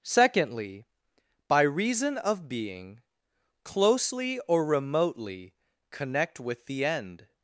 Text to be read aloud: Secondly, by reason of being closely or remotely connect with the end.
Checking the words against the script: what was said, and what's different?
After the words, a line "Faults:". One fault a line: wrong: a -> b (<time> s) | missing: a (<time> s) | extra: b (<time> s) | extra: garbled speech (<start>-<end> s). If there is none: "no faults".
Secondly, by reason of being closely or remotely connect with the end.
Faults:
no faults